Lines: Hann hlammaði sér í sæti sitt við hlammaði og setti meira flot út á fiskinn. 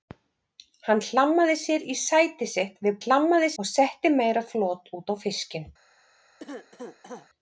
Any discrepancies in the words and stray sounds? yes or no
yes